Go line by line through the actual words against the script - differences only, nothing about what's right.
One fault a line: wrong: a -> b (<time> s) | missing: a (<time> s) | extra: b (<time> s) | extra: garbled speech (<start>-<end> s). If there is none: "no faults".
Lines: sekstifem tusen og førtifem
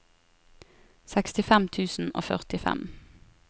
no faults